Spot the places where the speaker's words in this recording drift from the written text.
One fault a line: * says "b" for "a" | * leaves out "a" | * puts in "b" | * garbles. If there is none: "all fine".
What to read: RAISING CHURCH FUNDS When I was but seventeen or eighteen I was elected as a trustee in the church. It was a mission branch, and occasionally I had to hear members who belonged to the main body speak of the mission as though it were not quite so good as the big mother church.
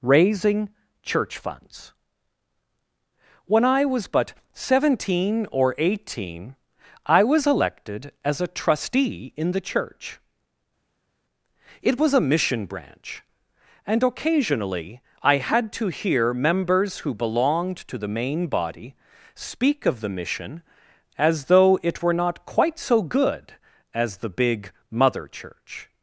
all fine